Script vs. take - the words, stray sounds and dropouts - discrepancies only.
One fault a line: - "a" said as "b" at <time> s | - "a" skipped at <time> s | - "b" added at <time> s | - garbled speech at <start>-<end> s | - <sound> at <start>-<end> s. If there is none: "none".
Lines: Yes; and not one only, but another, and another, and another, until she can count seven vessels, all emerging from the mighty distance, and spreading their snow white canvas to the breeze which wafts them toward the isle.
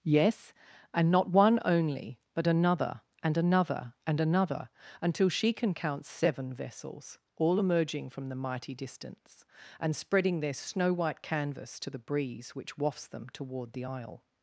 none